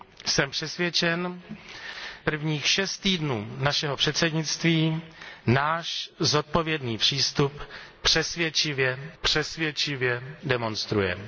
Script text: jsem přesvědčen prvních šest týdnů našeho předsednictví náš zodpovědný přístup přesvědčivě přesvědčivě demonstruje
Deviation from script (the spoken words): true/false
false